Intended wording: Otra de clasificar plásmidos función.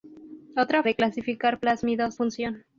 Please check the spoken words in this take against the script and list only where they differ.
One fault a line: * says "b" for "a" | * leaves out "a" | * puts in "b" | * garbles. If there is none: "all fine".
all fine